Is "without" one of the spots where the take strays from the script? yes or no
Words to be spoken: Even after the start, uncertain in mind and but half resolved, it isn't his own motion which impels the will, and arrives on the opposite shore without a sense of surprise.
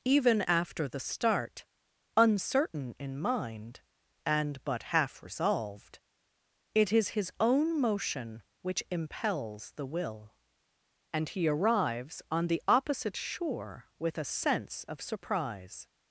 yes